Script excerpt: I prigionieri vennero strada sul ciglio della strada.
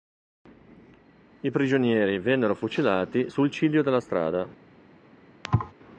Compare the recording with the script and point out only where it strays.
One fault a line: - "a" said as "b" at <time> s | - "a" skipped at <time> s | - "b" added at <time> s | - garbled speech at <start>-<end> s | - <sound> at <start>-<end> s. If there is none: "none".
- "strada" said as "fucilati" at 2.5 s
- thud at 5.4-5.7 s